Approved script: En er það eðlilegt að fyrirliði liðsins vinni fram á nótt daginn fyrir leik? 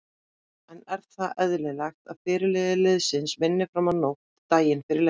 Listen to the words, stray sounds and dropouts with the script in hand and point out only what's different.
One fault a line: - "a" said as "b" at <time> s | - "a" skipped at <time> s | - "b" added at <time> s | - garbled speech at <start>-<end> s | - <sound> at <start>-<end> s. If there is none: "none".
none